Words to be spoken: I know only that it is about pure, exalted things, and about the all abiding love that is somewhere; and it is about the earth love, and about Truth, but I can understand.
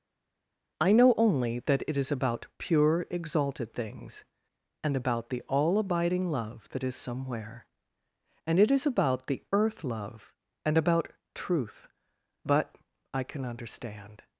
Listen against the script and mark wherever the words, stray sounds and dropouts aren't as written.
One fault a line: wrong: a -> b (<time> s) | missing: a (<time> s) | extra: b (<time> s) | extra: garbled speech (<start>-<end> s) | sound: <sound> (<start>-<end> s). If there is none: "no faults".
no faults